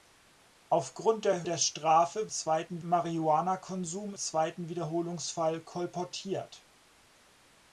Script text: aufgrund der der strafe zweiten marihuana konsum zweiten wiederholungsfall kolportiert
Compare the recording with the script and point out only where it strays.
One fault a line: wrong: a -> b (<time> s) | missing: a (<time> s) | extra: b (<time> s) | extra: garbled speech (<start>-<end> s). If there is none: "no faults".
no faults